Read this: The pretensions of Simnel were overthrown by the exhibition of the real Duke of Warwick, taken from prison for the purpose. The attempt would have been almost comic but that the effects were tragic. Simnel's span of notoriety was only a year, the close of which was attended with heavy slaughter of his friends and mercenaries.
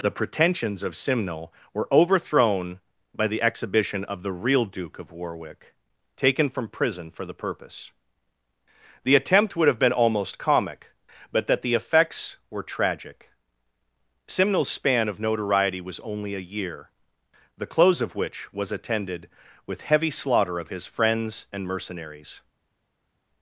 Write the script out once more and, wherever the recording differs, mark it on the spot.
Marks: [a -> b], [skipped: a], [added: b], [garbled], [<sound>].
The pretensions of Simnel were overthrown by the exhibition of the real Duke of Warwick, taken from prison for the purpose. The attempt would have been almost comic but that the effects were tragic. Simnel's span of notoriety was only a year, the close of which was attended with heavy slaughter of his friends and mercenaries.